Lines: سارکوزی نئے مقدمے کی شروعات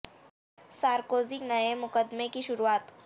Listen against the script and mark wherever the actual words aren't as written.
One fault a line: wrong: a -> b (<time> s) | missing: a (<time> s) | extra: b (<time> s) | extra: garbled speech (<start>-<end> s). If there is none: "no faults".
no faults